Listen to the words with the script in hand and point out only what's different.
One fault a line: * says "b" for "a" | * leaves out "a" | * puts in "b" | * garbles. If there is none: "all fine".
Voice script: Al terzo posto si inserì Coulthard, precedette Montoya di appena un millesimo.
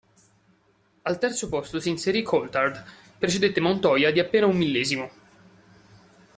all fine